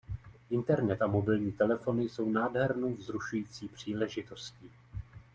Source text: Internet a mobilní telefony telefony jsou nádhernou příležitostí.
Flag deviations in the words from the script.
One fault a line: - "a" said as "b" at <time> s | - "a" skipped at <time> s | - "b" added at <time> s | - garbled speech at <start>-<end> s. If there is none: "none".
- "telefony" skipped at 2.0 s
- "vzrušující" added at 2.9 s